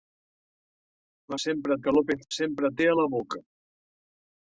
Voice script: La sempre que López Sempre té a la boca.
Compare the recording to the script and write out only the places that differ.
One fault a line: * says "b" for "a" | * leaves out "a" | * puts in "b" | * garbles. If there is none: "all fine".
all fine